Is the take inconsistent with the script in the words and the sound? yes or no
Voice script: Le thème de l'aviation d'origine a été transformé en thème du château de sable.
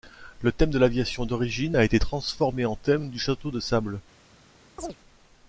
yes